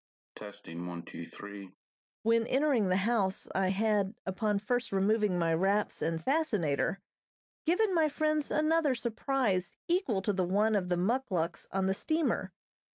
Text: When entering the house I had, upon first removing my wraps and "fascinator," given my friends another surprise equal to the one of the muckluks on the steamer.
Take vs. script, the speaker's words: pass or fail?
pass